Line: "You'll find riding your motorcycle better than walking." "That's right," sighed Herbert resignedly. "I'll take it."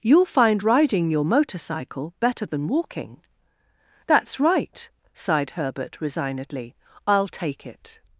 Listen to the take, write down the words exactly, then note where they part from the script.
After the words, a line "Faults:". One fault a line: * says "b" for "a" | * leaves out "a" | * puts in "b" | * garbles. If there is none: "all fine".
"You'll find riding your motorcycle better than walking." "That's right," sighed Herbert resignedly. "I'll take it."
Faults:
all fine